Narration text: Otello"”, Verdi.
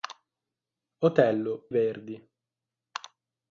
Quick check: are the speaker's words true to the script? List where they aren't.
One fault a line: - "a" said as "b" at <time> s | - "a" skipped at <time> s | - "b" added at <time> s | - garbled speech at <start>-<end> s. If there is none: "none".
none